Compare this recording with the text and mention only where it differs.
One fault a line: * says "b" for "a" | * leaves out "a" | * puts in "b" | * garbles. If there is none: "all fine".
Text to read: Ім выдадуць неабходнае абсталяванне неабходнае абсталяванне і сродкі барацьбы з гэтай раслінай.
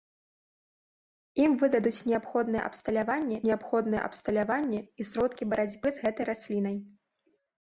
all fine